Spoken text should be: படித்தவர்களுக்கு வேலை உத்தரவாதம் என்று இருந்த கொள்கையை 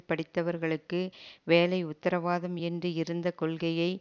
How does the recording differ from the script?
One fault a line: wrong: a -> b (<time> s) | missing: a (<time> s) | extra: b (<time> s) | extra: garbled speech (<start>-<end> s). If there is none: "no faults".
no faults